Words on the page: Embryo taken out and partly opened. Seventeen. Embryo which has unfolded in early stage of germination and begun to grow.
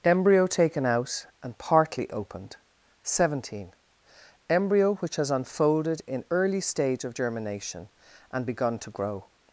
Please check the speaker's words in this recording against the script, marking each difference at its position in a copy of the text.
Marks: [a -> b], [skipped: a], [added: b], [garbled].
Embryo taken out and partly opened. Seventeen. Embryo which has unfolded in early stage of germination and begun to grow.